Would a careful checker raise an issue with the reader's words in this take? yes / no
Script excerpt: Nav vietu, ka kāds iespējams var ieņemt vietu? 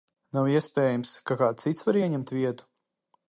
yes